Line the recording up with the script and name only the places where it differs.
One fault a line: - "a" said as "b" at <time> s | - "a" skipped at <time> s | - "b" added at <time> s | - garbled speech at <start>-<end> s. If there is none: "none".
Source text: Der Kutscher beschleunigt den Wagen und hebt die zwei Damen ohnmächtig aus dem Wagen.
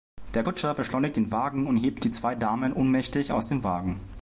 none